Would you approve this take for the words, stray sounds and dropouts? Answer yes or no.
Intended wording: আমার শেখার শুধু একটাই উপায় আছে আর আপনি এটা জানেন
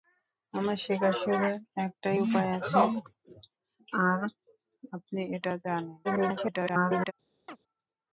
no